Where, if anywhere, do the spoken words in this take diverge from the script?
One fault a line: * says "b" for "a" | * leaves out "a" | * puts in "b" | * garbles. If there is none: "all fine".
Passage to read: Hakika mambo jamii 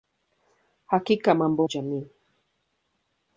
all fine